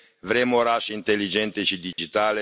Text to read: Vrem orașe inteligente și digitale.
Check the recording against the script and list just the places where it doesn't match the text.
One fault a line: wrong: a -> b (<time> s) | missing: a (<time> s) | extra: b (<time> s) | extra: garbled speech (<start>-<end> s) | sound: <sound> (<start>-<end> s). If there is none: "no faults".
sound: dropout (1.9-2.0 s)